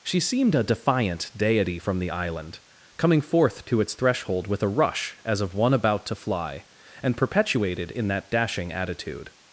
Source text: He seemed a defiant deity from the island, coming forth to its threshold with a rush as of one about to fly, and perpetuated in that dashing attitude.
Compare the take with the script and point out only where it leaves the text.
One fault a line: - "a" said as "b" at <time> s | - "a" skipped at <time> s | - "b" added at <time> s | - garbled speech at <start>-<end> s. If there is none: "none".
- "He" said as "She" at 0.0 s